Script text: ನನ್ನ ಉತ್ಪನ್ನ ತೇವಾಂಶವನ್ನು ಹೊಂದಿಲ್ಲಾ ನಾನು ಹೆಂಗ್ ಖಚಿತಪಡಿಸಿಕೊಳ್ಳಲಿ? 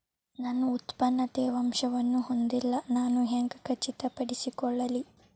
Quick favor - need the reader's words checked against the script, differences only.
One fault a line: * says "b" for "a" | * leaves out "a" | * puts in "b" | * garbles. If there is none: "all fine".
all fine